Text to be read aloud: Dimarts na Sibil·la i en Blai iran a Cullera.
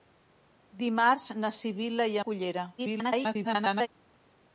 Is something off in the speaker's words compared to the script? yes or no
yes